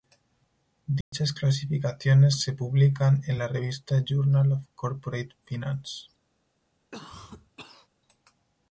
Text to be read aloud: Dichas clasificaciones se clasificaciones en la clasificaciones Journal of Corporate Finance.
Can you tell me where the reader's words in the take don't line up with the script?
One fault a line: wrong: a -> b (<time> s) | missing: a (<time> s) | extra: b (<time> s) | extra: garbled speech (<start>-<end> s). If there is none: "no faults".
wrong: clasificaciones -> publican (2.5 s)
wrong: clasificaciones -> revista (3.5 s)